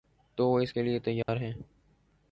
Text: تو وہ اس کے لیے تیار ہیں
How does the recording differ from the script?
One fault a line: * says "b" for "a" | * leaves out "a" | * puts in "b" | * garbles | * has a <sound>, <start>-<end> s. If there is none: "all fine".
* has a dropout, 1.2-1.3 s